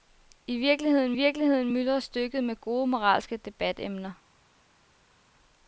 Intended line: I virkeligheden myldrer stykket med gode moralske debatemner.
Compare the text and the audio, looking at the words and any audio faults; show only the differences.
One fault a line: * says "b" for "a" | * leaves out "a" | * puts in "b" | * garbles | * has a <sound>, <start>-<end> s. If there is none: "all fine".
* puts in "virkeligheden"